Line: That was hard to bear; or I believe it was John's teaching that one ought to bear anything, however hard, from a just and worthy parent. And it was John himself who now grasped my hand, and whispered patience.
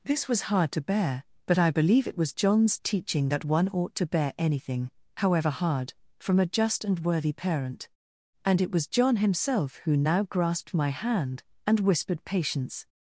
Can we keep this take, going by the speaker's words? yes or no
no